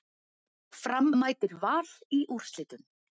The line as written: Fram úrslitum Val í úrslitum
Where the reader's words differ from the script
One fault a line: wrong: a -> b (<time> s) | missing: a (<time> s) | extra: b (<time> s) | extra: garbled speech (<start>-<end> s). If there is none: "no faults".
wrong: úrslitum -> mætir (1.2 s)